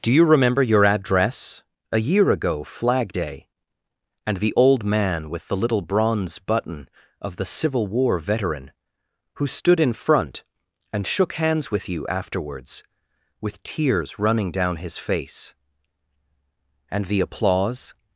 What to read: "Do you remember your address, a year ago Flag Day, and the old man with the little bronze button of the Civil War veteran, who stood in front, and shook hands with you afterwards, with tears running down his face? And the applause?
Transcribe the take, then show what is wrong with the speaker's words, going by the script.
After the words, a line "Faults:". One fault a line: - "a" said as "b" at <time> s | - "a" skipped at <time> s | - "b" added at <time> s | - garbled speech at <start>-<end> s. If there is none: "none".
"Do you remember your address, a year ago Flag Day, and the old man with the little bronze button of the Civil War veteran, who stood in front, and shook hands with you afterwards, with tears running down his face? And the applause?
Faults:
none